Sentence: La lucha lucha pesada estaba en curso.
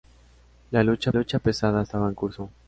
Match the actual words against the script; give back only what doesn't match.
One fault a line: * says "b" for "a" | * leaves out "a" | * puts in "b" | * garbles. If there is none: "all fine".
all fine